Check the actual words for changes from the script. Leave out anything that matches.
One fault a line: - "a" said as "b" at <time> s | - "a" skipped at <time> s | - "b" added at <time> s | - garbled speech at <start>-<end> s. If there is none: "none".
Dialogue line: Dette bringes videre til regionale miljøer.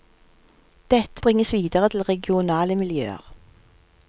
none